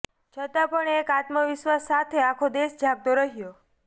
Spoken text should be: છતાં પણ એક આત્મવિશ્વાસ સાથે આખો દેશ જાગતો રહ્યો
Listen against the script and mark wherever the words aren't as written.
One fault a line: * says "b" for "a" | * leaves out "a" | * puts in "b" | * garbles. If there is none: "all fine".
all fine